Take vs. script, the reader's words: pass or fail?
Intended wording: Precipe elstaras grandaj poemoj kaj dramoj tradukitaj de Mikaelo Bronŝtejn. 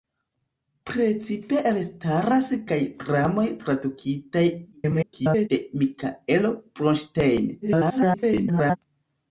fail